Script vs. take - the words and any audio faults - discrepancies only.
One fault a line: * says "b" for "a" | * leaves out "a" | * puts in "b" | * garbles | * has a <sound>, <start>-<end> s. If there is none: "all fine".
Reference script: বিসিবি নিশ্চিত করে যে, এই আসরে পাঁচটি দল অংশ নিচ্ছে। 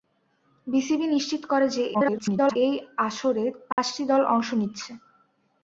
* garbles
* has a dropout, 3.7-3.8 s